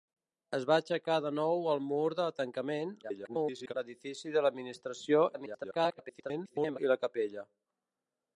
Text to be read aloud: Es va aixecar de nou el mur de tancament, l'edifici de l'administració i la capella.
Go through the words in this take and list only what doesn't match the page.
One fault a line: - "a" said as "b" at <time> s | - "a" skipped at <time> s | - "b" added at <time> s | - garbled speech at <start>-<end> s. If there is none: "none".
- garbled speech at 3.0-3.7 s
- garbled speech at 5.3-6.8 s